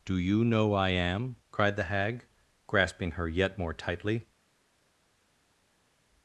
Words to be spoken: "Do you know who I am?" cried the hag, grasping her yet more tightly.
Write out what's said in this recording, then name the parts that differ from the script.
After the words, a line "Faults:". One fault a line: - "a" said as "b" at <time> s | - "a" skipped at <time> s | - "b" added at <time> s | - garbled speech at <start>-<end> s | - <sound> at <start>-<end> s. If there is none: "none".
"Do you know I am?" cried the hag, grasping her yet more tightly.
Faults:
- "who" skipped at 0.7 s